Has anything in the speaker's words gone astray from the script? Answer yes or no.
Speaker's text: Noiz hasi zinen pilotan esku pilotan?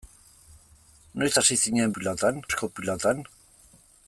no